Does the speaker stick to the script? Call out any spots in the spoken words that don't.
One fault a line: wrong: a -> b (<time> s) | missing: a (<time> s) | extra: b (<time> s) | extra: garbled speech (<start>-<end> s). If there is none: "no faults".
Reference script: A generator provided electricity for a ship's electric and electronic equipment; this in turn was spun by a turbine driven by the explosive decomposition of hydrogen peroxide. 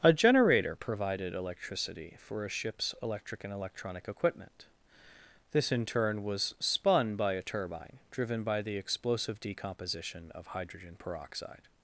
no faults